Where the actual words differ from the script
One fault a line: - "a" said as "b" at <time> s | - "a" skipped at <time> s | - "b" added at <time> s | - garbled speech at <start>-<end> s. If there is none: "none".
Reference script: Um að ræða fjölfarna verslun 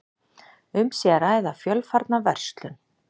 - "sé" added at 1.0 s